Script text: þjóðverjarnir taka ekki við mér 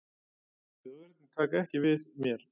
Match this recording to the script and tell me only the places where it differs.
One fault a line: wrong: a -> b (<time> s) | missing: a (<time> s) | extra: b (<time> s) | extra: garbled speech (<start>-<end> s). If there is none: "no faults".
no faults